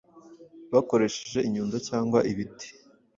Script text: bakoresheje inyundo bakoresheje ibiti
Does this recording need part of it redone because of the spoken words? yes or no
yes